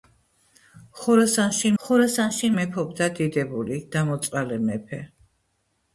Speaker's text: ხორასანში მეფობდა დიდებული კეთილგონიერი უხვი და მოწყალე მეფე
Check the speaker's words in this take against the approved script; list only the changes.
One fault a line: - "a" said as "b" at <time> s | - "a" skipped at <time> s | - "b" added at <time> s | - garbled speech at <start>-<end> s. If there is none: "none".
- "ხორასანში" added at 1.8 s
- "კეთილგონიერი უხვი" skipped at 3.8 s